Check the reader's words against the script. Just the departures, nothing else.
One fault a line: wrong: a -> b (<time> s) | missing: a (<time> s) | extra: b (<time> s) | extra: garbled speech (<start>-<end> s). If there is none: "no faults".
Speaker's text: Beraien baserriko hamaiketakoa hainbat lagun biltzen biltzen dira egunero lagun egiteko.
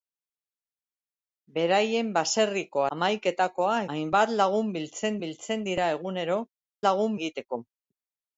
no faults